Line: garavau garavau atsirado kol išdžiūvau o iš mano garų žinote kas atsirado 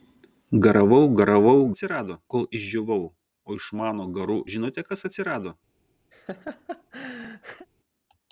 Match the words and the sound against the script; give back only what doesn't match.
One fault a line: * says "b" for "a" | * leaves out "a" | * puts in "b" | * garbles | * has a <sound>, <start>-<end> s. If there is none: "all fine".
* has a laugh, 6.1-7.7 s